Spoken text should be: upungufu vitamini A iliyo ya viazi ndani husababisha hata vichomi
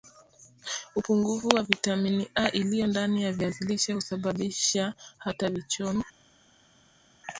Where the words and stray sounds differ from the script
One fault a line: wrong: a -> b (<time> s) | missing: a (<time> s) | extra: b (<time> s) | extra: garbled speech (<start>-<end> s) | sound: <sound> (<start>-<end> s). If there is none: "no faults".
extra: wa (1.5 s)
extra: ndani (2.9 s)
wrong: ndani -> lishe (3.6 s)